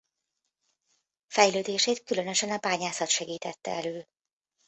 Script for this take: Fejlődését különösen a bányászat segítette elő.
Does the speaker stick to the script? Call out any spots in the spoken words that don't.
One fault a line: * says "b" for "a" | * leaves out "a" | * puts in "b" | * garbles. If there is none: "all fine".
all fine